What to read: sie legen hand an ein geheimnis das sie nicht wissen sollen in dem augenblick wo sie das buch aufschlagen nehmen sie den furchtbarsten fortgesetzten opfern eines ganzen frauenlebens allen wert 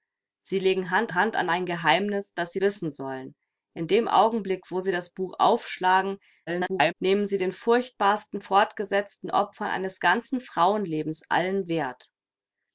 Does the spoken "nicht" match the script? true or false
false